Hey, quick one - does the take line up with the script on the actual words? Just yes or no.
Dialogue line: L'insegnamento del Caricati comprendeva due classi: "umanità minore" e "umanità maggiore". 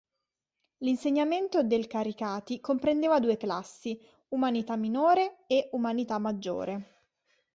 yes